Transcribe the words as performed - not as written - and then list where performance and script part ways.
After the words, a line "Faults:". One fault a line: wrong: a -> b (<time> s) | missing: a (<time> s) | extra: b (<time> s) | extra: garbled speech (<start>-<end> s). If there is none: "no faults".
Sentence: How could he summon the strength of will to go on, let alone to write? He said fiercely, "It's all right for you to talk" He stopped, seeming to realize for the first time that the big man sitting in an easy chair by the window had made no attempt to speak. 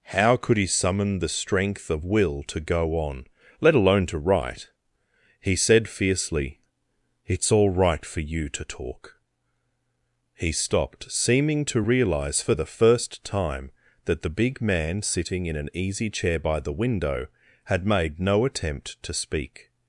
How could he summon the strength of will to go on, let alone to write? He said fiercely, "It's all right for you to talk" He stopped, seeming to realize for the first time that the big man sitting in an easy chair by the window had made no attempt to speak.
Faults:
no faults